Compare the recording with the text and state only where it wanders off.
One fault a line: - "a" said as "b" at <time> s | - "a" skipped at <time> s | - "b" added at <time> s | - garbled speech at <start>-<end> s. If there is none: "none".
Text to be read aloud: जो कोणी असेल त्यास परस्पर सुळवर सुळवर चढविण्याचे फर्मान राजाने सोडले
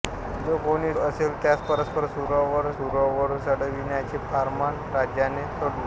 none